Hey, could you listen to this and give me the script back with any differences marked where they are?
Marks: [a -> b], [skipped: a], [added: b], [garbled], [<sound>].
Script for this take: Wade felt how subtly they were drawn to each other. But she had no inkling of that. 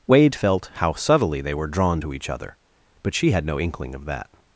Wade felt how subtly they were drawn to each other. But she had no inkling of that.